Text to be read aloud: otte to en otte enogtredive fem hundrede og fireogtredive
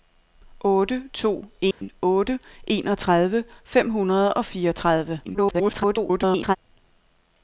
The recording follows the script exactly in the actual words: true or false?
false